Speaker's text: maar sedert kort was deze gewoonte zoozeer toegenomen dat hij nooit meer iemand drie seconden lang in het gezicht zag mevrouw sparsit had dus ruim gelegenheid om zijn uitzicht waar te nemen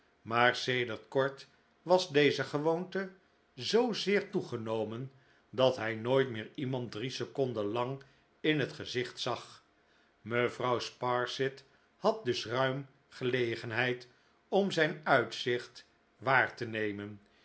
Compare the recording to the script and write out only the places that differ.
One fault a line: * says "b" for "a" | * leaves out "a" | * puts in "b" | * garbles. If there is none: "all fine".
all fine